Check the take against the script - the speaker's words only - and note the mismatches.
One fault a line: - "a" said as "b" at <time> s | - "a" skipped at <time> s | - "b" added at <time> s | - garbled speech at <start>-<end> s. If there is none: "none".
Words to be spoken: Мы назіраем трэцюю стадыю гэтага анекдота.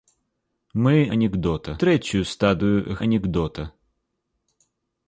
- "назіраем" said as "анекдота" at 1.2 s
- "гэтага" skipped at 3.0 s